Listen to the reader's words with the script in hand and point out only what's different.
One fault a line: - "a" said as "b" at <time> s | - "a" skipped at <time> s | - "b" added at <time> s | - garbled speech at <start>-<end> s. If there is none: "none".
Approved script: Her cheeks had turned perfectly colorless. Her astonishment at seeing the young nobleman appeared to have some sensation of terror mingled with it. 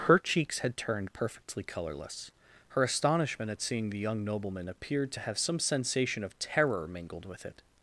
none